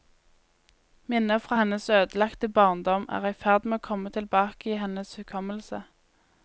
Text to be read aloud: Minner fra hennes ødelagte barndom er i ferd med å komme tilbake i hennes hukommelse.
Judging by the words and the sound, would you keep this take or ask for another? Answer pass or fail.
pass